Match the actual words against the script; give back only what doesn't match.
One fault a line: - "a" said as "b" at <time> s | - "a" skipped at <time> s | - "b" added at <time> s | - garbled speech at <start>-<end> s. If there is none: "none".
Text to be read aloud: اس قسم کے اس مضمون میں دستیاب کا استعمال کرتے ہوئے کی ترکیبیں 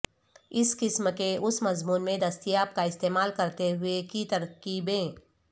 none